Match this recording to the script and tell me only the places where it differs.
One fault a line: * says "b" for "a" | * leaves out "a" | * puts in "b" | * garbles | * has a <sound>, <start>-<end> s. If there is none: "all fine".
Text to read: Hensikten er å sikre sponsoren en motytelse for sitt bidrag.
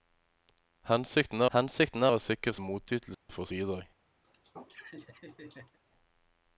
* puts in "hensikten"
* leaves out "sponsoren"
* has a dropout, 3.1-3.3 s
* leaves out "sitt"
* has a laugh, 4.2-5.8 s